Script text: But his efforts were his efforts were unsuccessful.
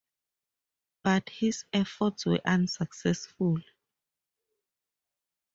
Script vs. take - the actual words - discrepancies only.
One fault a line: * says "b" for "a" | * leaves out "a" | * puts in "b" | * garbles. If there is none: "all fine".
* leaves out "his efforts were"